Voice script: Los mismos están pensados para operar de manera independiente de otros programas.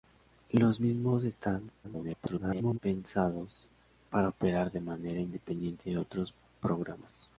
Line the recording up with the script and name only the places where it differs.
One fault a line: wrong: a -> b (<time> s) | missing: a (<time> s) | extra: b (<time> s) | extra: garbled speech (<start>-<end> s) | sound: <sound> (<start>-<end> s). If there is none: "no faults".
extra: garbled speech (1.8-2.8 s)